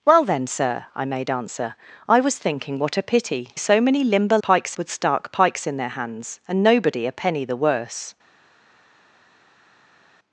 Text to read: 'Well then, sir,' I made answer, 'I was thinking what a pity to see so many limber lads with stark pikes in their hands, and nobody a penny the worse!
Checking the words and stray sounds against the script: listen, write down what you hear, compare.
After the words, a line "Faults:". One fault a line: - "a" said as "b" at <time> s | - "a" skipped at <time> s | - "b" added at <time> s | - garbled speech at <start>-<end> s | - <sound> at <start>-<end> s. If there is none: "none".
'Well then, sir,' I made answer, 'I was thinking what a pity so many limber pikes with stark pikes in their hands, and nobody a penny the worse!
Faults:
- "to see" skipped at 3.5 s
- "lads" said as "pikes" at 4.4 s